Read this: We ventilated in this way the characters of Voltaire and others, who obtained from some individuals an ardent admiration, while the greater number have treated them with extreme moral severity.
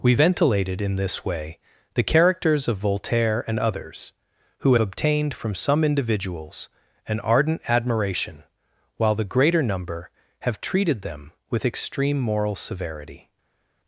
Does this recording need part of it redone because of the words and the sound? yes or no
no